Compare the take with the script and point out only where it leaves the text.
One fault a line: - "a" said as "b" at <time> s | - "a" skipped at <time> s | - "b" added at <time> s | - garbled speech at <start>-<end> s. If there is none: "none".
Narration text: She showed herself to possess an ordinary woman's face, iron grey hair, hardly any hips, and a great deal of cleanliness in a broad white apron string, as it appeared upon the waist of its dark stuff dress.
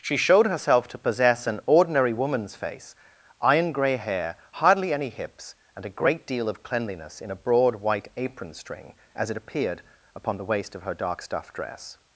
- "its" said as "her" at 10.8 s